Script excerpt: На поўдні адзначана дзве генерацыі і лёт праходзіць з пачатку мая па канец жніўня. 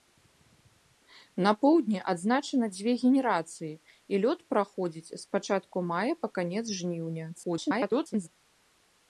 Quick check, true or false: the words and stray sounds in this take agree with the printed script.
false